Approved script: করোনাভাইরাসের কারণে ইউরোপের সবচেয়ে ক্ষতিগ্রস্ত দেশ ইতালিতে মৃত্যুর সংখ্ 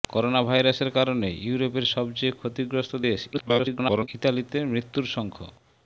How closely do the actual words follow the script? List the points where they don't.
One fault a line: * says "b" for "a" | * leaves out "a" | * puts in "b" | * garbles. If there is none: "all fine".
* garbles